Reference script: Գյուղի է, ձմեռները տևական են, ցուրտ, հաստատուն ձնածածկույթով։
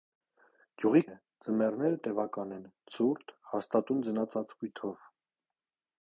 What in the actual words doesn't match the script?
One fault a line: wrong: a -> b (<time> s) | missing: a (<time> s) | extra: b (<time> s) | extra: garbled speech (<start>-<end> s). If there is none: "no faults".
no faults